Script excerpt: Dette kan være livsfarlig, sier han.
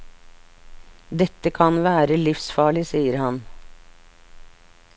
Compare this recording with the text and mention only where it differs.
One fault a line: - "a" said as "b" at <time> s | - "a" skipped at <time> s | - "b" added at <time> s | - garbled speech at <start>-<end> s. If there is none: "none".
none